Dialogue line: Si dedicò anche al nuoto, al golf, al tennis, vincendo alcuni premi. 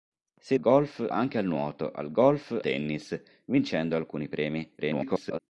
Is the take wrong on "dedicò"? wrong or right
wrong